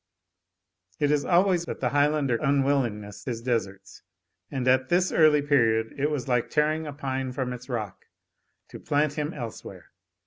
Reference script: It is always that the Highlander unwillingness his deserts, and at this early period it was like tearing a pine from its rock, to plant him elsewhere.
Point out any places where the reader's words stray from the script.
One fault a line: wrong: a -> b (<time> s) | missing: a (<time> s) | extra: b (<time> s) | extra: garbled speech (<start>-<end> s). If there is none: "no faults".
no faults